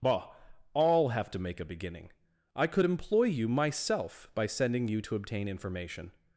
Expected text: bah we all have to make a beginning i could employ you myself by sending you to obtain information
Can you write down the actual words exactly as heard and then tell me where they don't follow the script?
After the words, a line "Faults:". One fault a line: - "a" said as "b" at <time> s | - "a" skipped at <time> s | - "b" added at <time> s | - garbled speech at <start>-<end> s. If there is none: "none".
bah all have to make a beginning i could employ you myself by sending you to obtain information
Faults:
- "we" skipped at 0.3 s